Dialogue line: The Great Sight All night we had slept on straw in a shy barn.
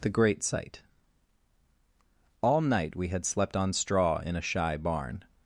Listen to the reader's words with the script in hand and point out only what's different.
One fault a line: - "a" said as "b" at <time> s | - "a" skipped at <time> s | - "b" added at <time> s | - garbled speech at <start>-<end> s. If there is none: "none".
none